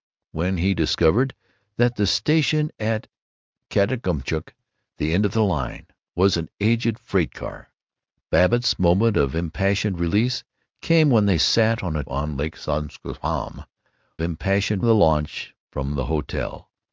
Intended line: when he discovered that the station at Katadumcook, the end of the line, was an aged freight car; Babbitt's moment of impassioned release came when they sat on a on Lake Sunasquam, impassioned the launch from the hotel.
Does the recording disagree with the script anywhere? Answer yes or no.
no